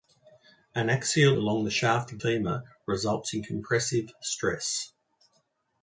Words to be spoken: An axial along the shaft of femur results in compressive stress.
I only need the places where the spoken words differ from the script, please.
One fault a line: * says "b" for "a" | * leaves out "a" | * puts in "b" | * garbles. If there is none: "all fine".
all fine